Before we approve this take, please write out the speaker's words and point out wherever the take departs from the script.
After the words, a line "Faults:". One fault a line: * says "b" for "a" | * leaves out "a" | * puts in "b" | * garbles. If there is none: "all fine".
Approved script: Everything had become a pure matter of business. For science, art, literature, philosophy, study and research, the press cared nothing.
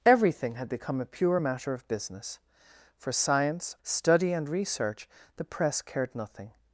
Everything had become a pure matter of business. For science, study and research, the press cared nothing.
Faults:
* leaves out "art literature philosophy"